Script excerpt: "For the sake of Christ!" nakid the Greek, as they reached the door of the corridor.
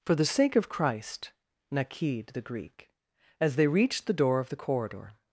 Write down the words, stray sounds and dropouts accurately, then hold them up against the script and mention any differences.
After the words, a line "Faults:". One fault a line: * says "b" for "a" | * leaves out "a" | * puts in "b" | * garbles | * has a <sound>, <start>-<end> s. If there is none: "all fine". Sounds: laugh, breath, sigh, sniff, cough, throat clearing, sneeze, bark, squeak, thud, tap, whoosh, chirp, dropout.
"For the sake of Christ!" nakid the Greek, as they reached the door of the corridor.
Faults:
all fine